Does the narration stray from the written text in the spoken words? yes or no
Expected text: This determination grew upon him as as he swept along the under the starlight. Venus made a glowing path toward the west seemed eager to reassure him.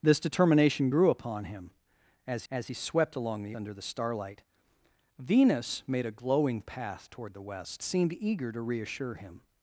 no